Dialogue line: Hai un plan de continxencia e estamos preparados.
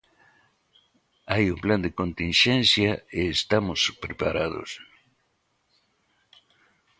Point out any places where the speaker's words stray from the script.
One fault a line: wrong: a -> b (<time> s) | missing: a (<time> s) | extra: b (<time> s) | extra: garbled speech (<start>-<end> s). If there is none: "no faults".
no faults